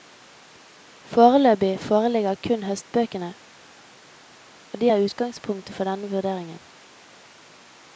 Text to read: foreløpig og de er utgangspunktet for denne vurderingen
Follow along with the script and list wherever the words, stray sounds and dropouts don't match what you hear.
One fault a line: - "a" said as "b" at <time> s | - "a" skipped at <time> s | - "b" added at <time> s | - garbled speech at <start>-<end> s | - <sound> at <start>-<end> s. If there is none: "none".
- "foreligger kun høstbøkene" added at 1.8 s